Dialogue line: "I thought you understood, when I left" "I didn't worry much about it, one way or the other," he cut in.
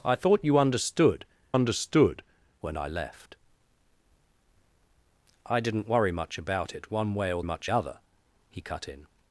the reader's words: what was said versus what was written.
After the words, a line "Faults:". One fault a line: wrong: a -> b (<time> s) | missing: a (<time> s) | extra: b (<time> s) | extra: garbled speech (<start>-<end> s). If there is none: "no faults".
"I thought you understood understood, when I left" "I didn't worry much about it, one way or much other," he cut in.
Faults:
extra: understood (1.5 s)
wrong: the -> much (7.4 s)